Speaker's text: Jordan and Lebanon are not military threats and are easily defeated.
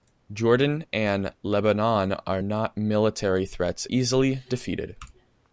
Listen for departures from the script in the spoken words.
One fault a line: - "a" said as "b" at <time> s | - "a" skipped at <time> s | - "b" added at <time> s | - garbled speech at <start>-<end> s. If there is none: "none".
- "and are" skipped at 3.8 s